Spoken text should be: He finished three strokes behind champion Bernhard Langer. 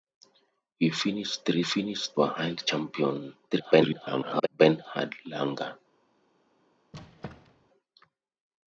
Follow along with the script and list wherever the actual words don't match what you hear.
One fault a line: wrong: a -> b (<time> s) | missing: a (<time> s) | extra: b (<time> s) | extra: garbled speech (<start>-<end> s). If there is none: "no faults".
wrong: strokes -> finished (1.6 s)
extra: garbled speech (3.5-4.5 s)